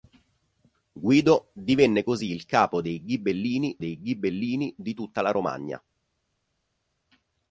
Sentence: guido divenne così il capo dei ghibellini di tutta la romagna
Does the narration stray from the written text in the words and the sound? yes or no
yes